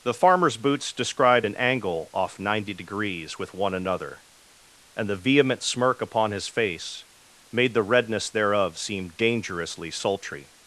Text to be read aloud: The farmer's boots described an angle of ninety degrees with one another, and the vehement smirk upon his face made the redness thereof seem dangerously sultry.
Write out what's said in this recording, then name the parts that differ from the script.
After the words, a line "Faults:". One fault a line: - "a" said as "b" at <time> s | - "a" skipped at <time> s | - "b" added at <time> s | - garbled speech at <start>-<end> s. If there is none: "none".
The farmer's boots described an angle off ninety degrees with one another, and the vehement smirk upon his face made the redness thereof seem dangerously sultry.
Faults:
- "of" said as "off" at 2.1 s